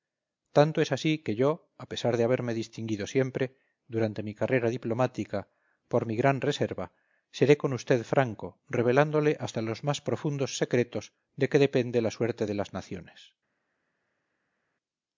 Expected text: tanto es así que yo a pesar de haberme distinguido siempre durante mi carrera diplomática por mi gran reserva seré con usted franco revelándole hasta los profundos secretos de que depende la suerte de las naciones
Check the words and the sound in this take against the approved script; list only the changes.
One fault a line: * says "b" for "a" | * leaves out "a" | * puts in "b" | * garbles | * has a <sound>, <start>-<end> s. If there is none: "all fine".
* puts in "más"